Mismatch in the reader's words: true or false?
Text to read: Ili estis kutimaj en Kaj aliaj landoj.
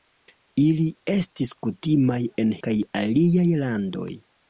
false